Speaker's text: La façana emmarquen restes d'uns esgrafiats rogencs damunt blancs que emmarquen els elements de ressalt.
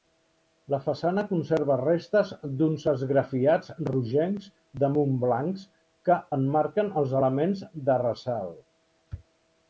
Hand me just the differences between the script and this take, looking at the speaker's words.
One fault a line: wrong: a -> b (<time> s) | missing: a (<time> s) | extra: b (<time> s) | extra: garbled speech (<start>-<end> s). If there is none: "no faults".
wrong: emmarquen -> conserva (1.3 s)